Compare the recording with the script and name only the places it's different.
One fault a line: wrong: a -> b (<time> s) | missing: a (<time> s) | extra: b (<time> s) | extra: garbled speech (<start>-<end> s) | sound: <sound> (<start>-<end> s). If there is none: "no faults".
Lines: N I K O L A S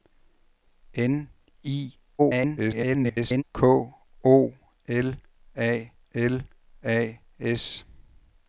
extra: garbled speech (2.2-3.4 s)
extra: L A (6.1 s)